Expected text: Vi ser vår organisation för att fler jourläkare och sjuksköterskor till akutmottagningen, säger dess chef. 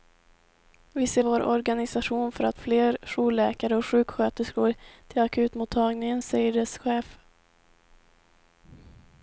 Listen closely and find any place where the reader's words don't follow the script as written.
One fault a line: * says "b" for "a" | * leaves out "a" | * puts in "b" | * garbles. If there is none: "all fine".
all fine